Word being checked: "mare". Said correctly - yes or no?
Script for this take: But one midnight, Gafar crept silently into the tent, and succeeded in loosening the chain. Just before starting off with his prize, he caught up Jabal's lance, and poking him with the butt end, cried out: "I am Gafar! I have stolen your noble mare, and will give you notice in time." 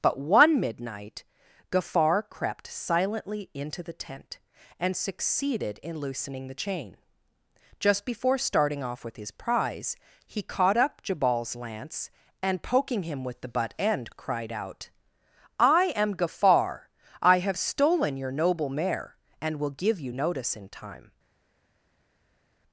yes